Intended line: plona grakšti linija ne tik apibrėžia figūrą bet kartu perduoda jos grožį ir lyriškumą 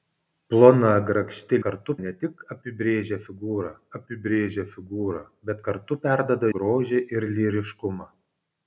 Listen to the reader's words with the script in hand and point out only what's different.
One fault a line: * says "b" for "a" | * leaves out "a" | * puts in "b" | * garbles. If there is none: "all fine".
* says "kartu" for "linija"
* puts in "apibrėžia figūrą"
* leaves out "jos"